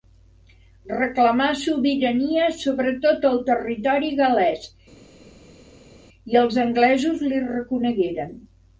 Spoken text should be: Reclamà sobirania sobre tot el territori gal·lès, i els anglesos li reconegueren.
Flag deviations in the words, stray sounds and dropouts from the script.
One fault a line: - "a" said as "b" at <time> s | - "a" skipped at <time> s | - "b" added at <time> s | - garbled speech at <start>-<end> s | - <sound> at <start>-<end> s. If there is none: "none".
none